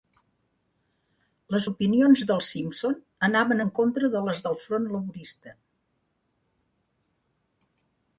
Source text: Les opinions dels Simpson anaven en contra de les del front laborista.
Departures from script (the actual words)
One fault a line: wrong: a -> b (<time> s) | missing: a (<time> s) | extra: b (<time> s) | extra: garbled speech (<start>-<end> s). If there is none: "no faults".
no faults